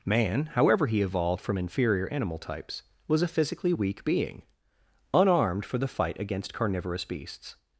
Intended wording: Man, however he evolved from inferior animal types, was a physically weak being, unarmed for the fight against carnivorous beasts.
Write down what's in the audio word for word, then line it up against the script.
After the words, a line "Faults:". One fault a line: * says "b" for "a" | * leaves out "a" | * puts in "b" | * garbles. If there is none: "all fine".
Man, however he evolved from inferior animal types, was a physically weak being, unarmed for the fight against carnivorous beasts.
Faults:
all fine